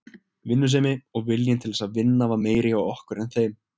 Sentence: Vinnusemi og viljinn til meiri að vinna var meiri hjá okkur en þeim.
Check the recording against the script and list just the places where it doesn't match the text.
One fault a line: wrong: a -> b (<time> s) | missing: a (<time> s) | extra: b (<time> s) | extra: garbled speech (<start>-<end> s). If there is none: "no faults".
wrong: meiri -> þess (1.8 s)